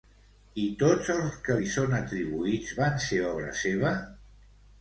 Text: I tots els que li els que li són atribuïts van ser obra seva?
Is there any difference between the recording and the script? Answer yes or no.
yes